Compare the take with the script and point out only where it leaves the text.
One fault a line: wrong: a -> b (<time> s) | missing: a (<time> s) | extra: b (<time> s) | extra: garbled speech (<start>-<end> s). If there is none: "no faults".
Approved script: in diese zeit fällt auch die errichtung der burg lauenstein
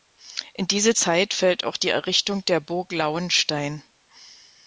no faults